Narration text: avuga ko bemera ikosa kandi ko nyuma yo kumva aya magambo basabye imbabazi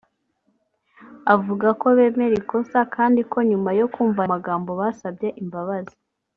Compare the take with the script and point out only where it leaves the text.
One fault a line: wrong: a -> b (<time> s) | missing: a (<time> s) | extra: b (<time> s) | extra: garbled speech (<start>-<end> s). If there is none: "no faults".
missing: aya (4.2 s)